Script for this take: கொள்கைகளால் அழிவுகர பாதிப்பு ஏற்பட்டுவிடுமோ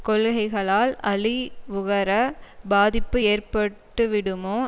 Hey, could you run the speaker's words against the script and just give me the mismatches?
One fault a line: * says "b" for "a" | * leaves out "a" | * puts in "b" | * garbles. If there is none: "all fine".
all fine